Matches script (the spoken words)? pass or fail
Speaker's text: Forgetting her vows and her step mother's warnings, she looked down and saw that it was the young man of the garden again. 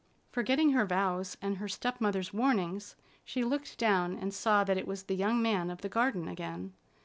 pass